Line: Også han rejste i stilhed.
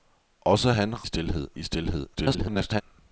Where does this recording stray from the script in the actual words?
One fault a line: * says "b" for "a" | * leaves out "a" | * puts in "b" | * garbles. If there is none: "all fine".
* says "stilhed" for "rejste"
* garbles